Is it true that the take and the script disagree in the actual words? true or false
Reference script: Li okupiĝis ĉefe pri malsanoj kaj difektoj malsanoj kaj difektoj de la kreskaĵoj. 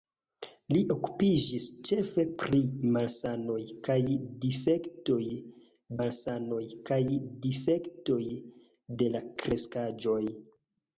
false